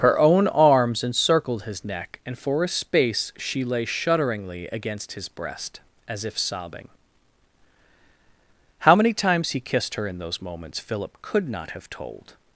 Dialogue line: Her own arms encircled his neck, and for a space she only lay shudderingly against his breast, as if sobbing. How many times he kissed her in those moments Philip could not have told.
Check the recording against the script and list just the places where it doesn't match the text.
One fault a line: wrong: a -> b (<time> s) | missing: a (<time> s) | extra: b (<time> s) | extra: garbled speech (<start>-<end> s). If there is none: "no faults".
missing: only (3.6 s)